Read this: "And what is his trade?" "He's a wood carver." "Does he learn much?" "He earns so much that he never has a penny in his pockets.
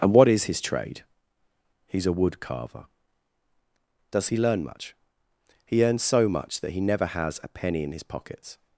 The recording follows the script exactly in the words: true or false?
true